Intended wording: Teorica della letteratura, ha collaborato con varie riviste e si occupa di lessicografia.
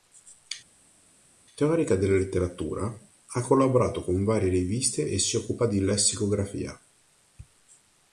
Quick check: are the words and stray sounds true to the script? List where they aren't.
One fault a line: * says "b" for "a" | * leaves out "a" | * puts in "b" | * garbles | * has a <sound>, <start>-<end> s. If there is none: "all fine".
all fine